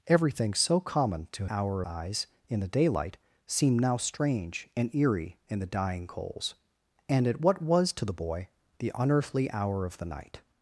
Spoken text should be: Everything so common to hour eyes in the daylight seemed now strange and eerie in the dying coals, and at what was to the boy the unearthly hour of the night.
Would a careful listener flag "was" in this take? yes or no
no